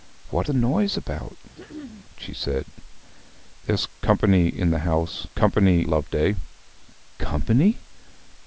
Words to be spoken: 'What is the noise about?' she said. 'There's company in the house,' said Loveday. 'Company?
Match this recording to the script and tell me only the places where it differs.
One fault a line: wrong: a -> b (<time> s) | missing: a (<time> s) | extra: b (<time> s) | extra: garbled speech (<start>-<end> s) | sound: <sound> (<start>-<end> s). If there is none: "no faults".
missing: is (0.5 s)
sound: throat clearing (1.5-2.1 s)
wrong: said -> company (5.3 s)